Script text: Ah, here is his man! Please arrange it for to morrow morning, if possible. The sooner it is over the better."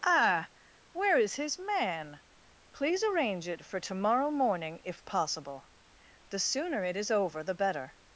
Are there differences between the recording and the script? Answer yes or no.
yes